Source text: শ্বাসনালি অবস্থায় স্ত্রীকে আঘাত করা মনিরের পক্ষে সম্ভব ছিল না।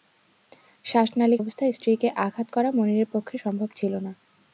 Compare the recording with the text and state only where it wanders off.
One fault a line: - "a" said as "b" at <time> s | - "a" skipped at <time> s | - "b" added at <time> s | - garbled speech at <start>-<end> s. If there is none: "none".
none